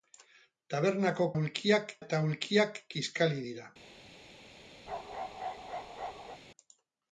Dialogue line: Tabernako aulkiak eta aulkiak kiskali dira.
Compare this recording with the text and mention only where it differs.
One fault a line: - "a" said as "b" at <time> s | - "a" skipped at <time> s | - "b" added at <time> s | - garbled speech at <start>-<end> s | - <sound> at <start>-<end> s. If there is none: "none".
- bark at 4.9-6.4 s